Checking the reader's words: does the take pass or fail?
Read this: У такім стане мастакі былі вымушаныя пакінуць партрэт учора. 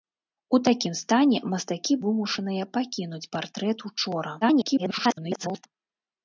fail